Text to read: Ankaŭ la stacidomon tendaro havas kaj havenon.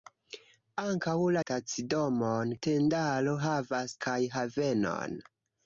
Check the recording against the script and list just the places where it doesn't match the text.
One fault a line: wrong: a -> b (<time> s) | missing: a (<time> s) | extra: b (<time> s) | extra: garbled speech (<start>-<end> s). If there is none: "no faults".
no faults